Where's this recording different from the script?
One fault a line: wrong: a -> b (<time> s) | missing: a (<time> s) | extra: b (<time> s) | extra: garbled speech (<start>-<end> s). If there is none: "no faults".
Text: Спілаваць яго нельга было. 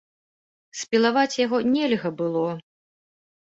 no faults